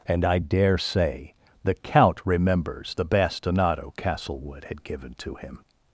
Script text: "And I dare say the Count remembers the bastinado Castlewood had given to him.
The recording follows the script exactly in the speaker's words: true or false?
true